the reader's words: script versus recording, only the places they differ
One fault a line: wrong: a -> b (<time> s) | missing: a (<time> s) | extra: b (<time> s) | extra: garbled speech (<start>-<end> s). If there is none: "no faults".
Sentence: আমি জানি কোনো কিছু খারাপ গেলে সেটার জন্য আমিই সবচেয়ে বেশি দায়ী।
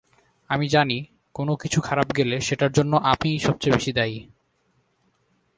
no faults